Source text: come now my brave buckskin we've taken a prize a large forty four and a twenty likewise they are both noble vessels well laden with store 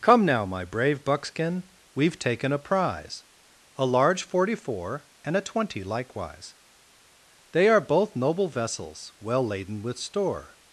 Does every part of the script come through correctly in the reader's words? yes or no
yes